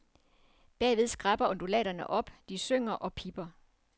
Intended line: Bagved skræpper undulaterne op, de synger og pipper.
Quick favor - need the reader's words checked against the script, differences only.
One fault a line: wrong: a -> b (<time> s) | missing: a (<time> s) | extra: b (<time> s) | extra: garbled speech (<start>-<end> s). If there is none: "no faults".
no faults